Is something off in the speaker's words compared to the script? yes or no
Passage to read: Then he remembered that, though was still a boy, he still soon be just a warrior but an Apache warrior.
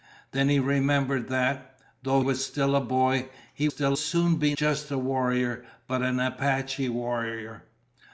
no